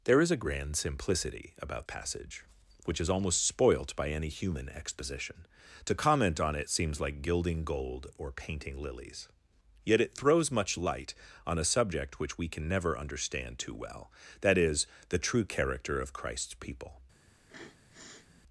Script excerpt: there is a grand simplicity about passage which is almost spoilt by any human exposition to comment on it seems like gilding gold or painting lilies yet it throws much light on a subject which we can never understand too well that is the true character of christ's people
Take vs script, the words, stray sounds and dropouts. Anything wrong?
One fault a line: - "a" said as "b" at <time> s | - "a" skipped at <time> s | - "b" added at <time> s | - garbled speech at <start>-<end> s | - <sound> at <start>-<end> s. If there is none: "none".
- sniff at 17.3-18.4 s